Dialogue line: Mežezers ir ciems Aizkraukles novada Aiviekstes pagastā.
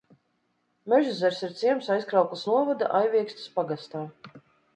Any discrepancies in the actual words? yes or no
no